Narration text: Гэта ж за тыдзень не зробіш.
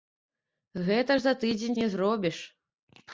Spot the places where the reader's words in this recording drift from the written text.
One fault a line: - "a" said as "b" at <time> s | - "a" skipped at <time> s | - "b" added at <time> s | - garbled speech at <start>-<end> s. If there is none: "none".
none